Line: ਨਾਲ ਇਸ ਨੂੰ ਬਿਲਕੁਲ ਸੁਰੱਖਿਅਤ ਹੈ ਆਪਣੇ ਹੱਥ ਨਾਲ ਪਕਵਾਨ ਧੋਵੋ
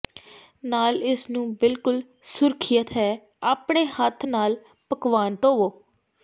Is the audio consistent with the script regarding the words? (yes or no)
yes